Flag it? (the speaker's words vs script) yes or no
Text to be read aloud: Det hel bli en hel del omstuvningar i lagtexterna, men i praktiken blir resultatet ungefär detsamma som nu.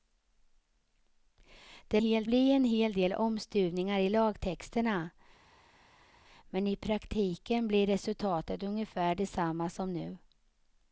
no